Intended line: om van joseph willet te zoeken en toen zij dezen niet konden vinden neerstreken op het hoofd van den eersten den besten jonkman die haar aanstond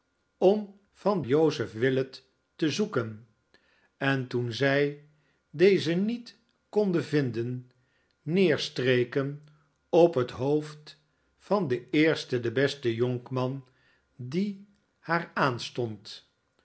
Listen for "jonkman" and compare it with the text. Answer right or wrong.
right